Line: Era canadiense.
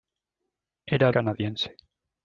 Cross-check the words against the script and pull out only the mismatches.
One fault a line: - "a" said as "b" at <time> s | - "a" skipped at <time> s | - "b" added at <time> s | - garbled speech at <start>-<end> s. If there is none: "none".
none